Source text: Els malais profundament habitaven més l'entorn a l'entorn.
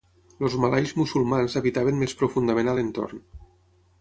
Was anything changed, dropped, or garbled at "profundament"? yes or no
yes